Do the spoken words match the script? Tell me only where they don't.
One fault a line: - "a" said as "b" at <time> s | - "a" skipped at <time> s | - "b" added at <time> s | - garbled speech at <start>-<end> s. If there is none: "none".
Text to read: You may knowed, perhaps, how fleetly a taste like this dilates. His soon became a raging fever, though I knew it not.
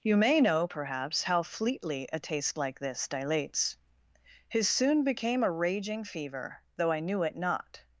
- "knowed" said as "know" at 0.4 s